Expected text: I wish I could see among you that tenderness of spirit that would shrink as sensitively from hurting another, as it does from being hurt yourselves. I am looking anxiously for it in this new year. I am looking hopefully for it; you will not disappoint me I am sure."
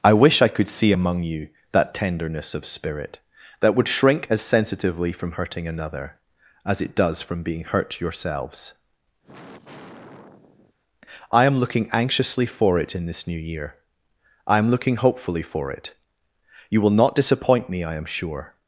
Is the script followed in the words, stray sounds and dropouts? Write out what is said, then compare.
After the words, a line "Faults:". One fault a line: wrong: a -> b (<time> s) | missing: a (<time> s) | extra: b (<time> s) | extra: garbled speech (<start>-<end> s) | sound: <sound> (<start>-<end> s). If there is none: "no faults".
I wish I could see among you that tenderness of spirit that would shrink as sensitively from hurting another, as it does from being hurt yourselves. I am looking anxiously for it in this new year. I am looking hopefully for it; you will not disappoint me I am sure."
Faults:
sound: sigh (9.2-10.7 s)